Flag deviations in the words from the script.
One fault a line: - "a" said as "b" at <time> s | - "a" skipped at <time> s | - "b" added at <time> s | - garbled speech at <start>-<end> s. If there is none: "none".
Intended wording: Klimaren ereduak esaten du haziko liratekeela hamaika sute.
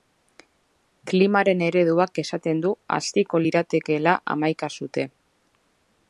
none